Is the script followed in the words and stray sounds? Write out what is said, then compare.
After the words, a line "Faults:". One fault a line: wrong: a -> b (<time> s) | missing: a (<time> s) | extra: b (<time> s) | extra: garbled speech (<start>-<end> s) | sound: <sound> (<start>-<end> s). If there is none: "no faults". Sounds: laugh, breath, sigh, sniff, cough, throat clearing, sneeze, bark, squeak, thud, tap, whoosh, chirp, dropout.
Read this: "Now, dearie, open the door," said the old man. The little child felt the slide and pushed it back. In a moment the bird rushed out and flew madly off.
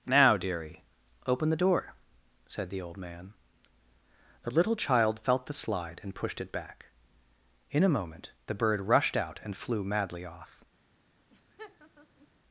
"Now, dearie, open the door," said the old man. The little child felt the slide and pushed it back. In a moment the bird rushed out and flew madly off.
Faults:
sound: laugh (11.3-12.3 s)